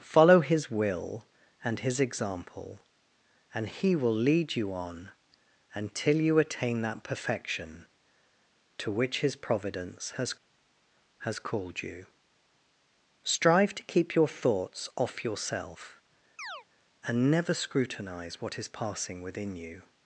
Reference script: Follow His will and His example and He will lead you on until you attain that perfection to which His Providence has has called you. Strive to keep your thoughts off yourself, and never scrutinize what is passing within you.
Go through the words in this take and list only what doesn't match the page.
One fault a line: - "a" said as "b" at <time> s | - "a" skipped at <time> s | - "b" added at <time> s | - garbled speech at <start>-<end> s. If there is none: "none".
none